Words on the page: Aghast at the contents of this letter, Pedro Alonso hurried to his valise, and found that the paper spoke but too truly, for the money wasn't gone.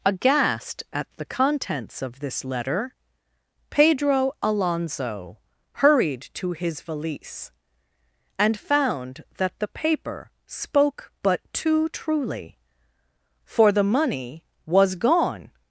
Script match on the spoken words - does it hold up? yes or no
no